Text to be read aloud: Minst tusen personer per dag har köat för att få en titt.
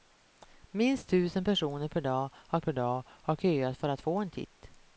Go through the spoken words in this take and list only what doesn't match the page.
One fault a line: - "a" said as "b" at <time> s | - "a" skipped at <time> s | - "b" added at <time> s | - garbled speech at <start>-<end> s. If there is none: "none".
- "per dag har" added at 2.6 s